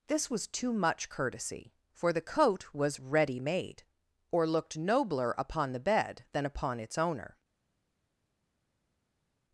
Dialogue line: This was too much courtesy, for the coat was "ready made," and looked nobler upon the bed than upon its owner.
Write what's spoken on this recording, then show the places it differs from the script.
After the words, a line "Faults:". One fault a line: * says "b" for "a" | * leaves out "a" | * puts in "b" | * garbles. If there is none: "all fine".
This was too much courtesy, for the coat was "ready made," or looked nobler upon the bed than upon its owner.
Faults:
* says "or" for "and"